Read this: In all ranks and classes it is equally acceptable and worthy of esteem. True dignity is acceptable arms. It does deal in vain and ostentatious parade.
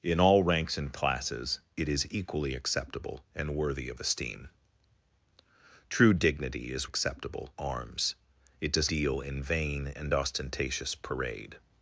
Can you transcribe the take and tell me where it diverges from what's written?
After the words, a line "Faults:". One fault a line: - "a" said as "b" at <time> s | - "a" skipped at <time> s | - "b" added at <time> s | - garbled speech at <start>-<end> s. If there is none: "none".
In all ranks and classes it is equally acceptable and worthy of esteem. True dignity is acceptable arms. It does deal in vain and ostentatious parade.
Faults:
none